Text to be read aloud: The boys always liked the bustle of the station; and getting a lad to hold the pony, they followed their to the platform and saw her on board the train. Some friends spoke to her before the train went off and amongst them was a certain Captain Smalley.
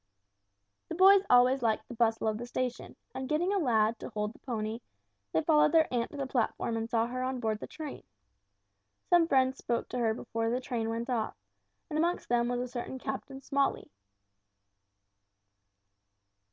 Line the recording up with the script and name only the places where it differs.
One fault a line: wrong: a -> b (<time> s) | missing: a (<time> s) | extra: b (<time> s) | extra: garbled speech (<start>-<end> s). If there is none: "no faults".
extra: aunt (5.9 s)